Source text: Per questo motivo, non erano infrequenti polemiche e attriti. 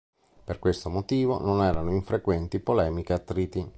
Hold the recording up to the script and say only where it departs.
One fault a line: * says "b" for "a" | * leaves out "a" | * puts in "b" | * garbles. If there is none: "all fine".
all fine